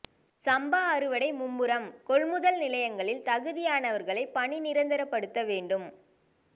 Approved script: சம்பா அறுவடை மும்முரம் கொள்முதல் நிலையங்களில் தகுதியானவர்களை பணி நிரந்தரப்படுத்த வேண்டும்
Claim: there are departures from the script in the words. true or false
false